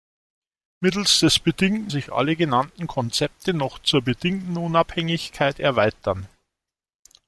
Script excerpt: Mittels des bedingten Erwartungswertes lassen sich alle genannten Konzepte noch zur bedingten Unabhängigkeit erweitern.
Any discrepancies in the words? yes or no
yes